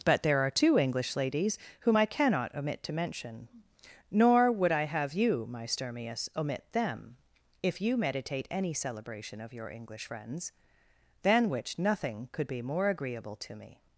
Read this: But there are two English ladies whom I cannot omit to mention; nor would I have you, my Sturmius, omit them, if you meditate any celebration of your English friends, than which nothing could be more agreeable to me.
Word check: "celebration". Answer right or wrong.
right